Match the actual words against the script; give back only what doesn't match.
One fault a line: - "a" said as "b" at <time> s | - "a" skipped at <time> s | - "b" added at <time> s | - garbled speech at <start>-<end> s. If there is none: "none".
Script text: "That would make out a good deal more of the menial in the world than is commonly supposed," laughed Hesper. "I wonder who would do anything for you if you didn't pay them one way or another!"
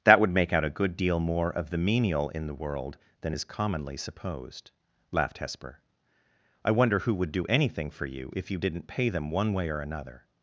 none